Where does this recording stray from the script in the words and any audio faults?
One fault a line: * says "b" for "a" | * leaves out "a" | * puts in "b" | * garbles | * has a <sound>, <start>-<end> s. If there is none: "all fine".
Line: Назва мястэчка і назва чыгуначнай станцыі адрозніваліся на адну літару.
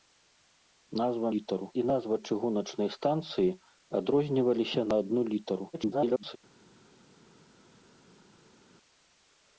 * says "літару" for "мястэчка"
* garbles